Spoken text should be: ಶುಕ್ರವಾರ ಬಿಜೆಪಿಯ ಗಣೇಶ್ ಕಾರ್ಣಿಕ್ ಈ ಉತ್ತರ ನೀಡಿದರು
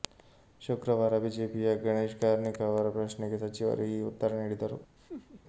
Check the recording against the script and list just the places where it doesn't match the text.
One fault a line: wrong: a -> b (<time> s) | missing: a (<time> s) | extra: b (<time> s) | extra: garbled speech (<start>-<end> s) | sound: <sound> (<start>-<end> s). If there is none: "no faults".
extra: ಅವರ ಪ್ರಶ್ನೆಗೆ ಸಚಿವರು (2.6 s)
sound: laugh (5.0-5.4 s)